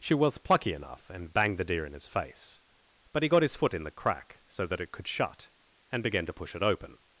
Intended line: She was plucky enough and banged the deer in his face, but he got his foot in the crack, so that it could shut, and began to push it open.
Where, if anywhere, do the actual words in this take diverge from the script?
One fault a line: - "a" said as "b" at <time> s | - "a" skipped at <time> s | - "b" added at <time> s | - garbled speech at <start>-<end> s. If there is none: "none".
none